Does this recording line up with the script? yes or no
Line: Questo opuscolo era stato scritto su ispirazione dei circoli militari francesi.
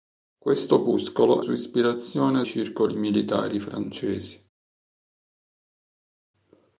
no